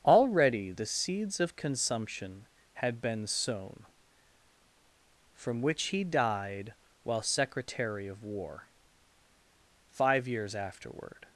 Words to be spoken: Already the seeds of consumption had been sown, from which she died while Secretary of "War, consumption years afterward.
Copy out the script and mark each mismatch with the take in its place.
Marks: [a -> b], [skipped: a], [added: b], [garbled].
Already the seeds of consumption had been sown, from which [she -> he] died while Secretary of "War, [consumption -> five] years afterward.